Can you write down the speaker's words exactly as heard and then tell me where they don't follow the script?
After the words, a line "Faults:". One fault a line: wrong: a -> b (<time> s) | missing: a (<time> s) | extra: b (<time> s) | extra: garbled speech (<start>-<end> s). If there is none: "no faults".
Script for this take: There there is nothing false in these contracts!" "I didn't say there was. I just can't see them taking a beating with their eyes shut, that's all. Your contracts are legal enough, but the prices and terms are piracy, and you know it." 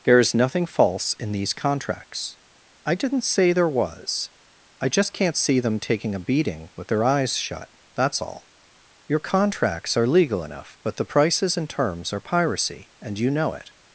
There is nothing false in these contracts!" "I didn't say there was. I just can't see them taking a beating with their eyes shut, that's all. Your contracts are legal enough, but the prices and terms are piracy, and you know it."
Faults:
missing: there (0.2 s)